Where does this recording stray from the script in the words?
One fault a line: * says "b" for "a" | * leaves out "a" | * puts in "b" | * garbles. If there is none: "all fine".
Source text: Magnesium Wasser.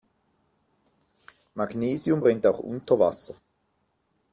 * puts in "brennt auch unter"